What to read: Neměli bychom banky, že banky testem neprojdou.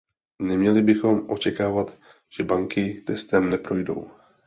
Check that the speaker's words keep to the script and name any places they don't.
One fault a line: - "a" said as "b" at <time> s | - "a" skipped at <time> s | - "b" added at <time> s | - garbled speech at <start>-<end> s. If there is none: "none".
- "banky" said as "očekávat" at 1.3 s